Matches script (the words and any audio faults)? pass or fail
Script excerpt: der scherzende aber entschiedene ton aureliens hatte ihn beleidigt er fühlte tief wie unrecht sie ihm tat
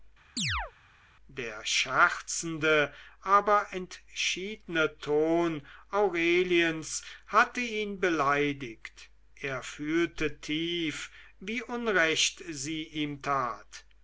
fail